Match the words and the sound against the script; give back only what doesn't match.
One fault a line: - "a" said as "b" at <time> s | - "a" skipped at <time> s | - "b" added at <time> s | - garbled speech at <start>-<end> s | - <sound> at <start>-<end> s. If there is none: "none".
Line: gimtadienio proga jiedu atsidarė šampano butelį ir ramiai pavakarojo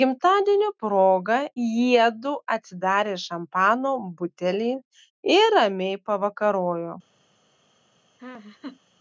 - laugh at 8.2-8.8 s